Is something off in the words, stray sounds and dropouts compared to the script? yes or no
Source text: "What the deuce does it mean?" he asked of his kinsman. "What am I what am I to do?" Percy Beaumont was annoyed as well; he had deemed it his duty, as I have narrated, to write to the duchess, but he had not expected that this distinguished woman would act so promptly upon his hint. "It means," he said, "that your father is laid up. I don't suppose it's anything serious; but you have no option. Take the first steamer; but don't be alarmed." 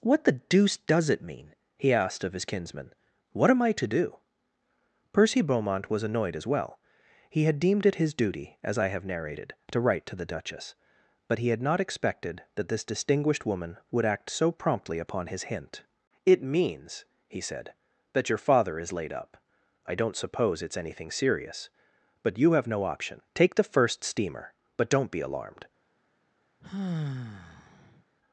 yes